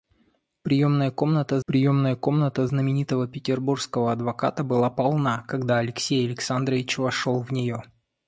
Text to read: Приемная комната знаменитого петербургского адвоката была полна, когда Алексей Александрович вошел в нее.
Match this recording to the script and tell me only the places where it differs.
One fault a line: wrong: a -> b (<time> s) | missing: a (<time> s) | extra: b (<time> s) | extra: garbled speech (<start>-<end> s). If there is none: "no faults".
extra: приемная комната (1.7 s)